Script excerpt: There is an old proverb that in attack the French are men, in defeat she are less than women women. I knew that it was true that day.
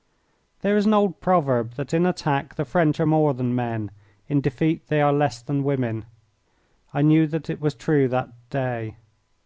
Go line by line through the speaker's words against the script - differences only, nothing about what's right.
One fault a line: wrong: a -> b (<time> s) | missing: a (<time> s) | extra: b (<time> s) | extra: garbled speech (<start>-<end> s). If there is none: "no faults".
extra: more than (3.0 s)
wrong: she -> they (4.9 s)
missing: women (6.0 s)